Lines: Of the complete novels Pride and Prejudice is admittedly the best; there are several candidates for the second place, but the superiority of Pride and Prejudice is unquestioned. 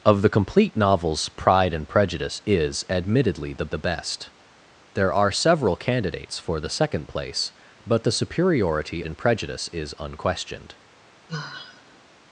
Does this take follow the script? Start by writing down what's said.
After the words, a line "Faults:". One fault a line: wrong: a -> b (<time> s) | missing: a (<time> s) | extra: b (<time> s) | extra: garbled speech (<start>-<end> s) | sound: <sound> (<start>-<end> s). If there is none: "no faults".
Of the complete novels Pride and Prejudice is admittedly the the best; there are several candidates for the second place, but the superiority and Prejudice is unquestioned.
Faults:
extra: the (3.7 s)
missing: of Pride (9.0 s)
sound: sigh (11.3-12.0 s)